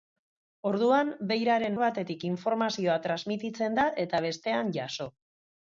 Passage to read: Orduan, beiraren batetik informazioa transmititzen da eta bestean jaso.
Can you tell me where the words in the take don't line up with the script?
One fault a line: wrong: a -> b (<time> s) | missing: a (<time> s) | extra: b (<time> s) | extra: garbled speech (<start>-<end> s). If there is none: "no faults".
no faults